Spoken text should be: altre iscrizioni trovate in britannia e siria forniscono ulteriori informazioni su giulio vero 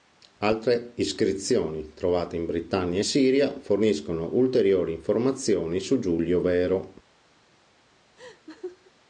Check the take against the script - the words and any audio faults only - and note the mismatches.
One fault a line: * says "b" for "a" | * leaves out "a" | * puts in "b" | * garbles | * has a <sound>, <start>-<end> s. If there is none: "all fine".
* has a laugh, 8.2-8.9 s